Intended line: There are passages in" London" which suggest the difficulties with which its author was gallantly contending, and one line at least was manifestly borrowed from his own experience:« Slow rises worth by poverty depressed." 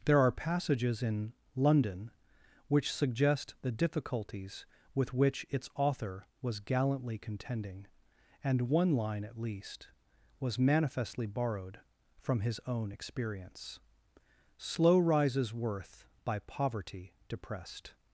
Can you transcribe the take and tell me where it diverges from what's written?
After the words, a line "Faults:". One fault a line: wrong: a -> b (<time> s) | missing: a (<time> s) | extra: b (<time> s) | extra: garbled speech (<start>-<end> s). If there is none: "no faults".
There are passages in" London" which suggest the difficulties with which its author was gallantly contending, and one line at least was manifestly borrowed from his own experience:« Slow rises worth by poverty depressed."
Faults:
no faults